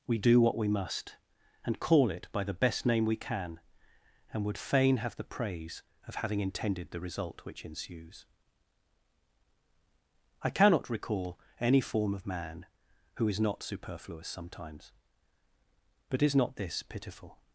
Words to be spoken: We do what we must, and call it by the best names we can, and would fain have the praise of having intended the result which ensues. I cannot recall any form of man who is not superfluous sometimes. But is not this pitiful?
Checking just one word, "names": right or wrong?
wrong